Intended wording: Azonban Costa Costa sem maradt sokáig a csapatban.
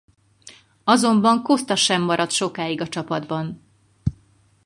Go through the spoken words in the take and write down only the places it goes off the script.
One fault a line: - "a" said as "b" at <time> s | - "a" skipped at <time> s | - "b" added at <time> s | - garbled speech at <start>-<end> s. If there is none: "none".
- "Costa" skipped at 1.8 s